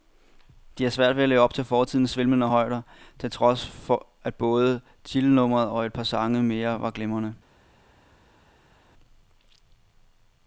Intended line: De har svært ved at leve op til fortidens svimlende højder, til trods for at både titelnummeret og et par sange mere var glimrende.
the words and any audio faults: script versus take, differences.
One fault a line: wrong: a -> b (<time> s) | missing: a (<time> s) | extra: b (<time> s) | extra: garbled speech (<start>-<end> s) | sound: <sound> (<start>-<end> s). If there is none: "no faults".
no faults